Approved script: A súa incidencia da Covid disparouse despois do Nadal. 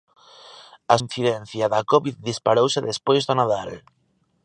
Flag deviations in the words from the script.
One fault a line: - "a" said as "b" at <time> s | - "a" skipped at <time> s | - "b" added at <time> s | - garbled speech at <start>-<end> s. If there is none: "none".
- "súa" skipped at 0.9 s